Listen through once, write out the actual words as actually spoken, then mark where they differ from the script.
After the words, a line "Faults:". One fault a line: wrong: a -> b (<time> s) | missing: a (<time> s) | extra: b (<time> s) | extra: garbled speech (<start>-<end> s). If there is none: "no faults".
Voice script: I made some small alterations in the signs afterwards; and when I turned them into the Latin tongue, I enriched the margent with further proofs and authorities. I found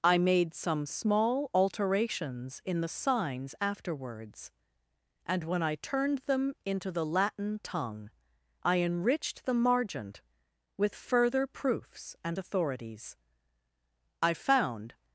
I made some small alterations in the signs afterwards; and when I turned them into the Latin tongue, I enriched the margent with further proofs and authorities. I found
Faults:
no faults